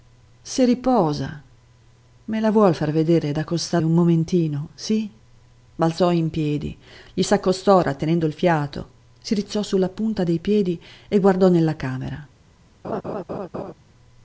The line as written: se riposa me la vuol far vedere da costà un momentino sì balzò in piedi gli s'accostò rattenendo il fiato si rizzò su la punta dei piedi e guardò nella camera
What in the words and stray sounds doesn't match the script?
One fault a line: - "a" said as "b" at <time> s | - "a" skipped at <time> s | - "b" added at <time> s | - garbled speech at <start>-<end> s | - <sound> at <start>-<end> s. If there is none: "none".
- laugh at 12.8-13.7 s